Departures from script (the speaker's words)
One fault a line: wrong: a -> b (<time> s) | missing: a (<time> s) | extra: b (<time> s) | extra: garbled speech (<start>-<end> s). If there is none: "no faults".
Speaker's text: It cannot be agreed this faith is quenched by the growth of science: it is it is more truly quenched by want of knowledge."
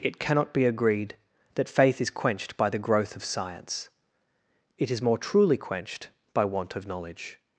wrong: this -> that (1.6 s)
missing: it is (5.0 s)